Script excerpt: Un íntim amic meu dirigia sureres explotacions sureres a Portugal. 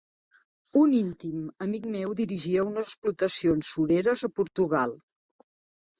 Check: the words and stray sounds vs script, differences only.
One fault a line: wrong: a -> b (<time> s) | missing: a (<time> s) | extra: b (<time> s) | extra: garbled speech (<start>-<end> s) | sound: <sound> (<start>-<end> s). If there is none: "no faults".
wrong: sureres -> unes (2.7 s)